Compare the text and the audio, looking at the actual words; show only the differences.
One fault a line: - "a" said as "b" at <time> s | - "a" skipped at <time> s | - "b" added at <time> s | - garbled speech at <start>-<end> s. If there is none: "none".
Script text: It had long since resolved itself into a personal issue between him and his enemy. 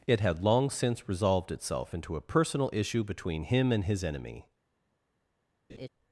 none